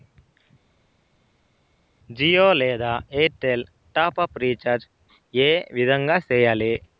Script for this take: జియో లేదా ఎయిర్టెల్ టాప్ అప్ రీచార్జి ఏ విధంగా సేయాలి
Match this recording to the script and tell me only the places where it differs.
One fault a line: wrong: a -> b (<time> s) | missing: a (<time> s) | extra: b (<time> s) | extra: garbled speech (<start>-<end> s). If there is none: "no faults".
no faults